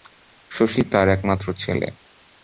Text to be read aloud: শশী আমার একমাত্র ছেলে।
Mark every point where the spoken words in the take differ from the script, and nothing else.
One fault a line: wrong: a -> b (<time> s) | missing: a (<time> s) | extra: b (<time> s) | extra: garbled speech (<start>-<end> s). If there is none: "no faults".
wrong: আমার -> তার (0.9 s)